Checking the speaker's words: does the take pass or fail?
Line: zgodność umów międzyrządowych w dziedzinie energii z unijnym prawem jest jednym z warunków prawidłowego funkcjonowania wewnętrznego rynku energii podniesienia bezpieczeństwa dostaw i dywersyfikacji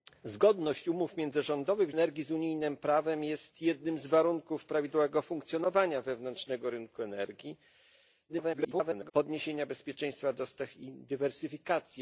fail